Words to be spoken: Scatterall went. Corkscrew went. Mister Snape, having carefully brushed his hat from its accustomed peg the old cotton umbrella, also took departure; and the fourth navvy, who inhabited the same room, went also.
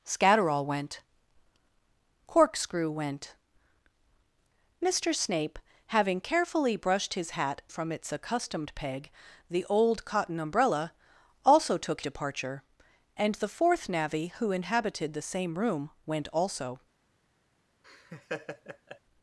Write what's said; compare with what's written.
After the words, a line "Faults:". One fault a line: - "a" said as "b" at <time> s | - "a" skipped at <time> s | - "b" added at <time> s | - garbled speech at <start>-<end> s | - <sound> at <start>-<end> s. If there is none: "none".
Scatterall went. Corkscrew went. Mister Snape, having carefully brushed his hat from its accustomed peg the old cotton umbrella, also took departure; and the fourth navvy, who inhabited the same room, went also.
Faults:
- laugh at 17.8-19.0 s